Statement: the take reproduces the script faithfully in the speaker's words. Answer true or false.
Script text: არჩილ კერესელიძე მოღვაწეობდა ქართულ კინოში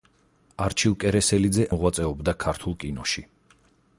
true